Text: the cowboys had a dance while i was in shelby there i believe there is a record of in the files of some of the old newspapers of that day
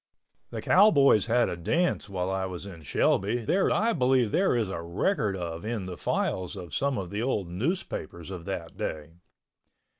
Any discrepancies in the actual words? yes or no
no